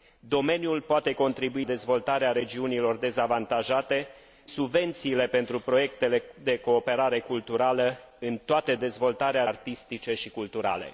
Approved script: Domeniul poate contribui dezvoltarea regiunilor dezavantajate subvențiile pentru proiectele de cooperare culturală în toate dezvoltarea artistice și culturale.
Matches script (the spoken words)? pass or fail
pass